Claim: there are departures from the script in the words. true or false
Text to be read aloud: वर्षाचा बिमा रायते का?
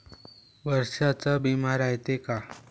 false